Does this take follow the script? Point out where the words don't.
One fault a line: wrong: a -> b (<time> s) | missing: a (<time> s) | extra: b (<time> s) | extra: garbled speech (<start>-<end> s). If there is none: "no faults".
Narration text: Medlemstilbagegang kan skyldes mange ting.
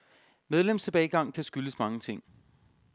no faults